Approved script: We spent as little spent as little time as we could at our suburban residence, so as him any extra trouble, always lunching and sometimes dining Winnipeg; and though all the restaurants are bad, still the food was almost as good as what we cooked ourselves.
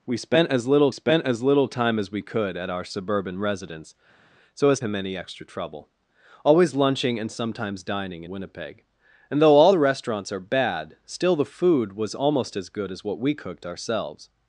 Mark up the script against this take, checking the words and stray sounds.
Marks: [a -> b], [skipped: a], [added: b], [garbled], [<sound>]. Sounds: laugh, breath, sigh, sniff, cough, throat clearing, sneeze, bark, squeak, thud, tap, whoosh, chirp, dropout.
We spent as little spent as little time as we could at our suburban residence, so as him any extra trouble, always lunching and sometimes dining Winnipeg; and though all the restaurants are bad, still the food was almost as good as what we cooked ourselves.